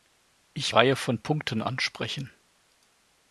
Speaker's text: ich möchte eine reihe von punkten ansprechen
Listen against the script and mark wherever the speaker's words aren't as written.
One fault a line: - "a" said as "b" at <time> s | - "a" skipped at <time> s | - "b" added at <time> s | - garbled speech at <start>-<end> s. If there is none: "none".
- "möchte eine" skipped at 0.7 s